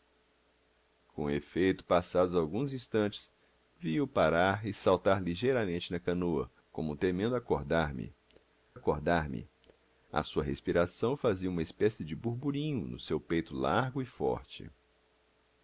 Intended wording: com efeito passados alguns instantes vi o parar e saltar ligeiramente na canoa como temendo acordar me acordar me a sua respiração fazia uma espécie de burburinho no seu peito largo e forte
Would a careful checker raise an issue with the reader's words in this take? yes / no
no